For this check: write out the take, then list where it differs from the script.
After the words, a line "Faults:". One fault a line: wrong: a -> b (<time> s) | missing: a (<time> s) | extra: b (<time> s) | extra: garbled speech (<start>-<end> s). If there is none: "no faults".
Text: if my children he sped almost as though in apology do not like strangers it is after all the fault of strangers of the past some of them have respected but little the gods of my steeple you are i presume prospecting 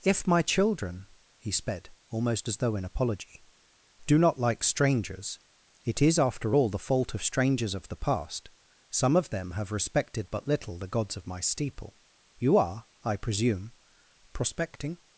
if my children he sped almost as though in apology do not like strangers it is after all the fault of strangers of the past some of them have respected but little the gods of my steeple you are i presume prospecting
Faults:
no faults